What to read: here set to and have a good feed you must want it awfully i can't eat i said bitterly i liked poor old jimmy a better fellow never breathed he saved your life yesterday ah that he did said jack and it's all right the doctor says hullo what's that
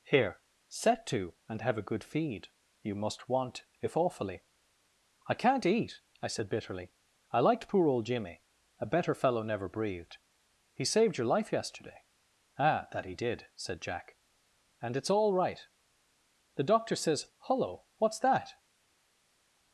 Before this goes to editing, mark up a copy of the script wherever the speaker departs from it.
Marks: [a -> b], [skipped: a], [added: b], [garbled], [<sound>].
here set to and have a good feed you must want [it -> if] awfully i can't eat i said bitterly i liked poor old jimmy a better fellow never breathed he saved your life yesterday ah that he did said jack and it's all right the doctor says hullo what's that